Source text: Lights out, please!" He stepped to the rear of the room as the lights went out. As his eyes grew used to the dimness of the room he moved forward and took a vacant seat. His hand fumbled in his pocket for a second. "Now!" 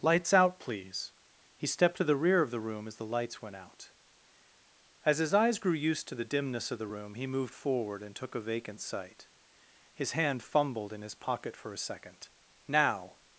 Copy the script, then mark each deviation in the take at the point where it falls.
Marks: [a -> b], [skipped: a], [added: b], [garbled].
Lights out, please!" He stepped to the rear of the room as the lights went out. As his eyes grew used to the dimness of the room he moved forward and took a vacant [seat. -> sight] His hand fumbled in his pocket for a second. "Now!"